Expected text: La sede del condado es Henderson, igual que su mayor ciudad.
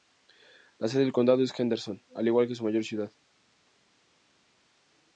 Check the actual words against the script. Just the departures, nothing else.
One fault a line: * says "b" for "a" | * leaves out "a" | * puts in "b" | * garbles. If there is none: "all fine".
* puts in "al"